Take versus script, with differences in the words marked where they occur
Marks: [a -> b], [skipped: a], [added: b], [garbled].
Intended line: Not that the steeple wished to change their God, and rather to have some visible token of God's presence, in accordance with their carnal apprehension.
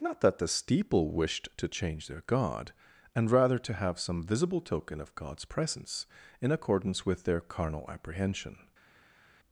Not that the steeple wished to change their God, and rather to have some visible token of God's presence, in accordance with their carnal apprehension.